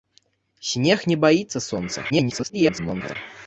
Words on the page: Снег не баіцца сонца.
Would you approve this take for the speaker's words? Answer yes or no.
no